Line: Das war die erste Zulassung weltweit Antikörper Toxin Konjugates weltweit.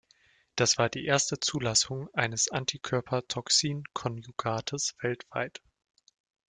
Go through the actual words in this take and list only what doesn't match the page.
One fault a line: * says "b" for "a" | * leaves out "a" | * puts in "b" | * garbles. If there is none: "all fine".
* says "eines" for "weltweit"